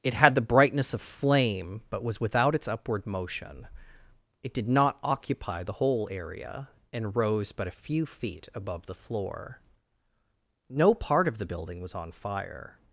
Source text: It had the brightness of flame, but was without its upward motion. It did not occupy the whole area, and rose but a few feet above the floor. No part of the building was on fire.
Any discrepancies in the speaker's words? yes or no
no